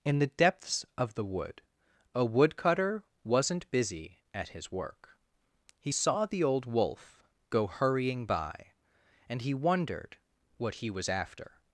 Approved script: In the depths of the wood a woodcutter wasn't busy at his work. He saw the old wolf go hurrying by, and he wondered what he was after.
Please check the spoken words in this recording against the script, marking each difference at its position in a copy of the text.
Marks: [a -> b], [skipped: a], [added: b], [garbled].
In the depths of the wood a woodcutter wasn't busy at his work. He saw the old wolf go hurrying by, and he wondered what he was after.